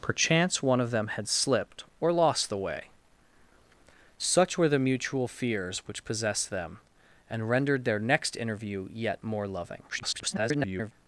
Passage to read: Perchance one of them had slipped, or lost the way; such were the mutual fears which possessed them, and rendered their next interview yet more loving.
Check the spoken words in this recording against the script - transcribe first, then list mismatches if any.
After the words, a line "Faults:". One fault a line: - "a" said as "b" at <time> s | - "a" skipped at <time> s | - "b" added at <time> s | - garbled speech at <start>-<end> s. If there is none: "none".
Perchance one of them had slipped, or lost the way; such were the mutual fears which possessed them, and rendered their next interview yet more loving. [garbled]
Faults:
- garbled speech at 9.9-10.9 s